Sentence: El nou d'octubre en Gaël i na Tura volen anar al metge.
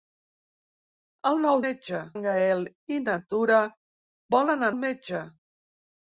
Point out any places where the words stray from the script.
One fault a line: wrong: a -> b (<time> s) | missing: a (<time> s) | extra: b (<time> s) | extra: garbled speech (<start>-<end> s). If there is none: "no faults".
wrong: d'octubre -> metge (1.7 s)
missing: anar (4.7 s)